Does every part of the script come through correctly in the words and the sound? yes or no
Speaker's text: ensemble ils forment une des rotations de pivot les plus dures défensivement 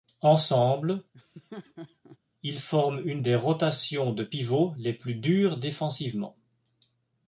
no